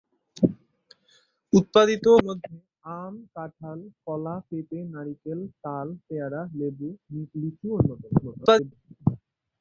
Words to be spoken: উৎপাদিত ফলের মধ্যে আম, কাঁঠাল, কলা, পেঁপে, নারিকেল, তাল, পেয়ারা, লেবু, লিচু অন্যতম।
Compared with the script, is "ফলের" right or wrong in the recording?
wrong